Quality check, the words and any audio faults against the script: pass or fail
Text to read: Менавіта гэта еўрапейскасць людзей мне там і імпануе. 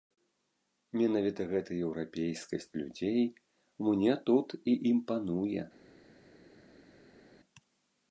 fail